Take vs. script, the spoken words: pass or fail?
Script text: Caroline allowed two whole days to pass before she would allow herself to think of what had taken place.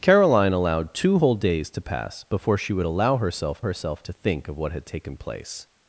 fail